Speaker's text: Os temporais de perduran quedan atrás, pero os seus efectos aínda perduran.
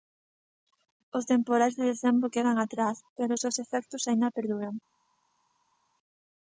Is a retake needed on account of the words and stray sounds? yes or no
yes